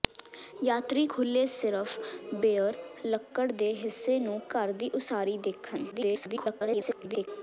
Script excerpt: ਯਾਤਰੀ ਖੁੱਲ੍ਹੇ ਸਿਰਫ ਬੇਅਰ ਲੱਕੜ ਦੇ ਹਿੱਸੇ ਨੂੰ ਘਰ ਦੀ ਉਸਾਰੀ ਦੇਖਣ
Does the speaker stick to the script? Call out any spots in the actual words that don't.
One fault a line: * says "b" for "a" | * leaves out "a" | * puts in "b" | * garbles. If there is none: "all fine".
* garbles